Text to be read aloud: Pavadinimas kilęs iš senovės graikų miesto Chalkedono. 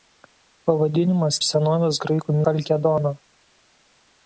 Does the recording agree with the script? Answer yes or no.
no